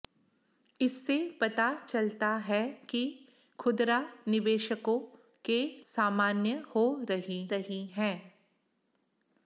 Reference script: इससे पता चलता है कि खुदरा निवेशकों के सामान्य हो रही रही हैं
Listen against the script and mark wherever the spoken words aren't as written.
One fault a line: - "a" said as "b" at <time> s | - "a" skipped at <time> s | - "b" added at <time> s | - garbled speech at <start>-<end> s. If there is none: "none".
none